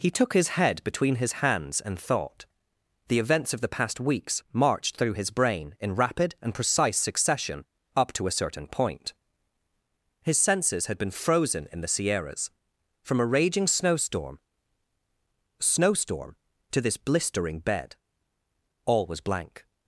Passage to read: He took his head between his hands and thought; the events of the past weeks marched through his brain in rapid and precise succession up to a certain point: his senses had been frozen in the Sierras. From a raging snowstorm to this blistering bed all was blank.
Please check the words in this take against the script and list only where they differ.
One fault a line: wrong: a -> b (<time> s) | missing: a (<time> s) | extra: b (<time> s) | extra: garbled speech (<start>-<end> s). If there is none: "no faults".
extra: snowstorm (15.6 s)